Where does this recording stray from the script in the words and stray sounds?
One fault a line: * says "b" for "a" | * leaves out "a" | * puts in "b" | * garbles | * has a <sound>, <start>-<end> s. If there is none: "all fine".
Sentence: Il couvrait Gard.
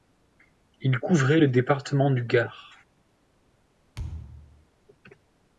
* puts in "le département du"
* has a thud, 3.9-4.7 s